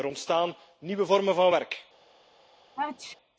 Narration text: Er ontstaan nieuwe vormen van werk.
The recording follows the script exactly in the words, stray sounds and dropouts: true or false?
false